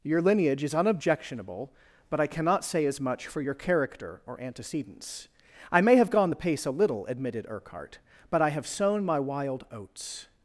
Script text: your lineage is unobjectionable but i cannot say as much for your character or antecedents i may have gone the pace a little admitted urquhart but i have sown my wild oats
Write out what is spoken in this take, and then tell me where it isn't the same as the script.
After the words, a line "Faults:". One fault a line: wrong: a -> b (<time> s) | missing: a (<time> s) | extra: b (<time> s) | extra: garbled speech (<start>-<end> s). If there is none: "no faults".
your lineage is unobjectionable but i cannot say as much for your character or antecedents i may have gone the pace a little admitted urquhart but i have sown my wild oats
Faults:
no faults